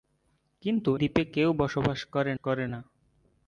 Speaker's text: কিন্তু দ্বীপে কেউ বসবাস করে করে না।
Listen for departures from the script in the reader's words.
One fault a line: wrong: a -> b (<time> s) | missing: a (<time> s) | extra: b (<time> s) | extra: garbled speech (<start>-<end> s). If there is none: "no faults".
no faults